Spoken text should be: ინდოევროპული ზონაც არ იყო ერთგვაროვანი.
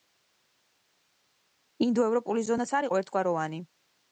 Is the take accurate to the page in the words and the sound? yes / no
yes